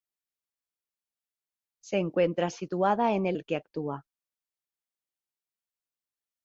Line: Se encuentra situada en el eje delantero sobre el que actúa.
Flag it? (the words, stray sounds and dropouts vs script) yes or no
yes